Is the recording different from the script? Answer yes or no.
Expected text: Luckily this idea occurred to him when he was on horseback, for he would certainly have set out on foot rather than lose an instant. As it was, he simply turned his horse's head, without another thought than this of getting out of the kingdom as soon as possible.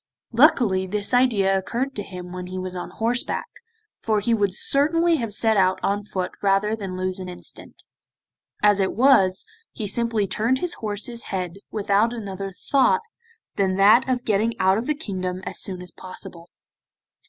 yes